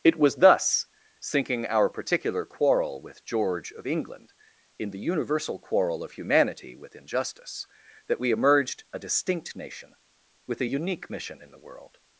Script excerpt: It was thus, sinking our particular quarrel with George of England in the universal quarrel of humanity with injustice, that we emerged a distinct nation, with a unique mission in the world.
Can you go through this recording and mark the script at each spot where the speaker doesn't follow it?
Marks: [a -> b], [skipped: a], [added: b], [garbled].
It was thus, sinking our particular quarrel with George of England in the universal quarrel of humanity with injustice, that we emerged a distinct nation, with a unique mission in the world.